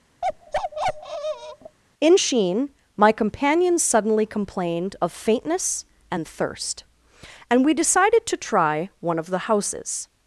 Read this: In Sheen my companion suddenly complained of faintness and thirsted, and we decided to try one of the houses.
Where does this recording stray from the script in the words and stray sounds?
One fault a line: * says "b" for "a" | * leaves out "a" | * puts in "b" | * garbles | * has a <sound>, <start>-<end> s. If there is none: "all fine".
* has a bark, 0.2-1.8 s
* says "thirst" for "thirsted"